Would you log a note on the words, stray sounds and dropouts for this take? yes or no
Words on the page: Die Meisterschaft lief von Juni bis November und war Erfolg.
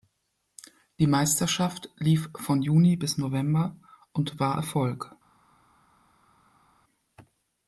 no